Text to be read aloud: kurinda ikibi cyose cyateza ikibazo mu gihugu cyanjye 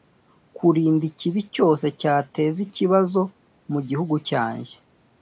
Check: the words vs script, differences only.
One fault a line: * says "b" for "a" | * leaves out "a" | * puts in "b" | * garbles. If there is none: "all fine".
all fine